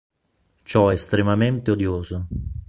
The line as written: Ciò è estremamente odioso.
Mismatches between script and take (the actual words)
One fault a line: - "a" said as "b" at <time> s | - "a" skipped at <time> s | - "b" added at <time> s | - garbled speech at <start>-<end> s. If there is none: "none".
none